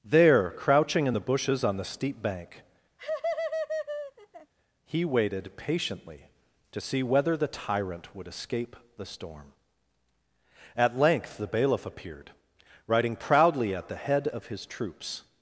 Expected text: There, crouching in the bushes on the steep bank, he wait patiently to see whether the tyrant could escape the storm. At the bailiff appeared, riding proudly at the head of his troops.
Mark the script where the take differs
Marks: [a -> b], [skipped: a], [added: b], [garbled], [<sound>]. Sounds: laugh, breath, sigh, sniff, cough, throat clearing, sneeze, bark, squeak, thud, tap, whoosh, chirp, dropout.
There, crouching in the bushes on the steep bank, [laugh] he [wait -> waited] patiently to see whether the tyrant [could -> would] escape the storm. At [added: length] the bailiff appeared, riding proudly at the head of his troops.